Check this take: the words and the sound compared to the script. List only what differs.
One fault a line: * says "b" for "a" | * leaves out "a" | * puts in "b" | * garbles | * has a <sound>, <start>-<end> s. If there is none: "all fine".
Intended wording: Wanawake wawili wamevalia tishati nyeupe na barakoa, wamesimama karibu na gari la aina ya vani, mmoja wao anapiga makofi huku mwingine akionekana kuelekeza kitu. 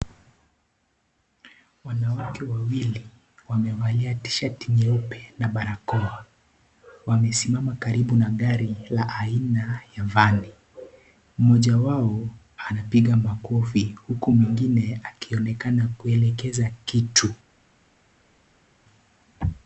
all fine